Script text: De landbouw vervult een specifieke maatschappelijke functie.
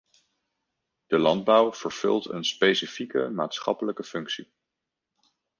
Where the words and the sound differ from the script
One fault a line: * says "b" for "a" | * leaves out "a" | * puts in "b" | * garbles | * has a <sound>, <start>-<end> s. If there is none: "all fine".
all fine